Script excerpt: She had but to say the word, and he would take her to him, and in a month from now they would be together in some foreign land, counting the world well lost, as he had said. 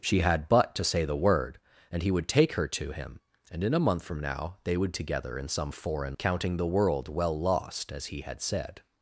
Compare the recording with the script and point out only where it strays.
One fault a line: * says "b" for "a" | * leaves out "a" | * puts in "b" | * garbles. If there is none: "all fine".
* leaves out "be"
* leaves out "land"